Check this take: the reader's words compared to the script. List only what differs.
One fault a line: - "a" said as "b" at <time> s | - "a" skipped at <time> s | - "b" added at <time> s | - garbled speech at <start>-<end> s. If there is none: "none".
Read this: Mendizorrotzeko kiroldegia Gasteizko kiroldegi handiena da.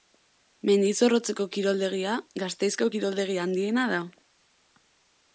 none